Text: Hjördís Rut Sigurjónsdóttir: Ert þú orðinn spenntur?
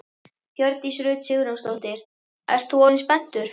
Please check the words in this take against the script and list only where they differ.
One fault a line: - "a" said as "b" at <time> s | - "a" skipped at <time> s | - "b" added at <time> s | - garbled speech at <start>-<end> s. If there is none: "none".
none